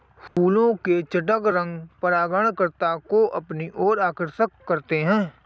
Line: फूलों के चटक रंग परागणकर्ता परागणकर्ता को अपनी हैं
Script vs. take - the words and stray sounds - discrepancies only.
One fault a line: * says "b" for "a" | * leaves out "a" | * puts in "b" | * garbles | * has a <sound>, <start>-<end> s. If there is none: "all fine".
* has a dropout, 0.3-0.4 s
* leaves out "परागणकर्ता"
* puts in "ओर आकर्षक करते"